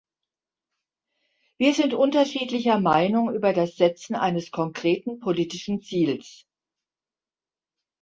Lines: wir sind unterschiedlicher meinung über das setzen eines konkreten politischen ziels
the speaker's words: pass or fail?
pass